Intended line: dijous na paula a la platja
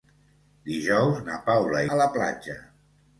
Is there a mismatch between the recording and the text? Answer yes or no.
no